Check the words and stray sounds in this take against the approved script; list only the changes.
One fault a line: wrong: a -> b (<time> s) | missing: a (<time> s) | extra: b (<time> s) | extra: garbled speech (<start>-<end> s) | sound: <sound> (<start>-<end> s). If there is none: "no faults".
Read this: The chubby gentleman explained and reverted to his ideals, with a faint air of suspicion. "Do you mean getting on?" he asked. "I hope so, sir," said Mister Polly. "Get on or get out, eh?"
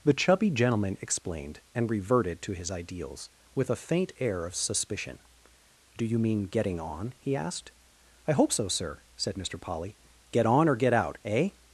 no faults